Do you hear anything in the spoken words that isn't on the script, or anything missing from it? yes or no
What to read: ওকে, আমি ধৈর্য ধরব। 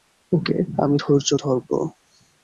no